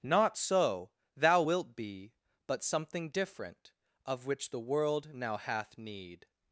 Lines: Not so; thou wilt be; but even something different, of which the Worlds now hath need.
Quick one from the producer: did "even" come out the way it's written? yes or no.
no